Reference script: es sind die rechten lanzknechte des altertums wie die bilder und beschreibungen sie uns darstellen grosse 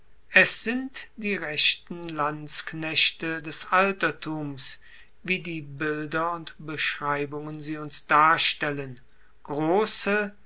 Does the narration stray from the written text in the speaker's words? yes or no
no